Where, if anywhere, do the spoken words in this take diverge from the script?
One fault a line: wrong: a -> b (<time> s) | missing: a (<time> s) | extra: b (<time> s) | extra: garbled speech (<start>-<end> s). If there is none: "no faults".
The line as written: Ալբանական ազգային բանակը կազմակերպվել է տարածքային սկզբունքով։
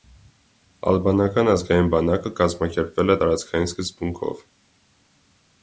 no faults